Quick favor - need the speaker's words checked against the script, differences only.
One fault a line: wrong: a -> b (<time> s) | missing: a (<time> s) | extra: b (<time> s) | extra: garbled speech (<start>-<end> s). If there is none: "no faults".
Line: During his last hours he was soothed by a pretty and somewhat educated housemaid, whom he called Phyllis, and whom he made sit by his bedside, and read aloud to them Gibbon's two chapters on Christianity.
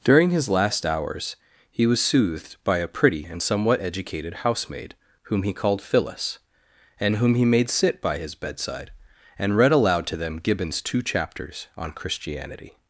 no faults